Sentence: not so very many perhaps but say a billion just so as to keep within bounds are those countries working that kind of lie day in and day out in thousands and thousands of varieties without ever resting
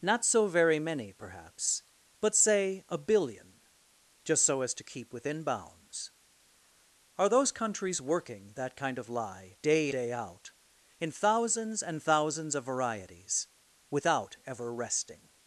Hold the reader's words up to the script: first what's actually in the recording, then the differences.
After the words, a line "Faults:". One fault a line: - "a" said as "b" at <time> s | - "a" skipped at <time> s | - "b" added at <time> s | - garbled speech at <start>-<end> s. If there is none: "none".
not so very many perhaps but say a billion just so as to keep within bounds are those countries working that kind of lie day day out in thousands and thousands of varieties without ever resting
Faults:
- "in and" skipped at 9.9 s